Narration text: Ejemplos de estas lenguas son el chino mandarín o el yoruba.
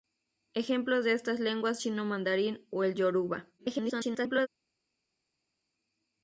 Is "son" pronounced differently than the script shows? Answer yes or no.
yes